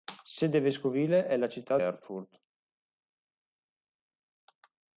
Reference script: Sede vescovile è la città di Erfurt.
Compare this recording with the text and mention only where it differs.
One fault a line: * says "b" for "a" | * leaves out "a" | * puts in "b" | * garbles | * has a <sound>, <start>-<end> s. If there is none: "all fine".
* leaves out "di"